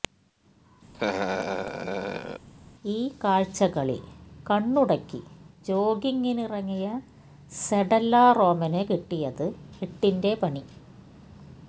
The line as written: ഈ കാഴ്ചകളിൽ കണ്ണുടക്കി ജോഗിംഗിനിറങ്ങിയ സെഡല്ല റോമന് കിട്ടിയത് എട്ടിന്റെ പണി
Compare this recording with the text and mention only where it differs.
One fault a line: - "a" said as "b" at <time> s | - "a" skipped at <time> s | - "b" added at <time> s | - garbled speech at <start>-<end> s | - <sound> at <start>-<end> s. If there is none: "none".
- laugh at 0.9-2.5 s